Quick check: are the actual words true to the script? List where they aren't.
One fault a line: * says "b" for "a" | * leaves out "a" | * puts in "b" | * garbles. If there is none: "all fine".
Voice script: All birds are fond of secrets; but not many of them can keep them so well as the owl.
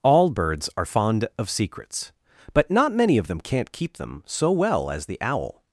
* says "can't" for "can"